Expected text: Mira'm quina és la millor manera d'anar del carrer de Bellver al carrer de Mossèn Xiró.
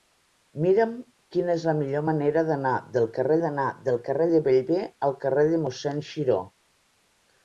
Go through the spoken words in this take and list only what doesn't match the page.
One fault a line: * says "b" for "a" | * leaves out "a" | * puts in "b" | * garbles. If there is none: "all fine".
* puts in "d'anar del carrer"